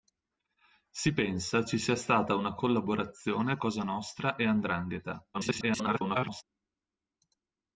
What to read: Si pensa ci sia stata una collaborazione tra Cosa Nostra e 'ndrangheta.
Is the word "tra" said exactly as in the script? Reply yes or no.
no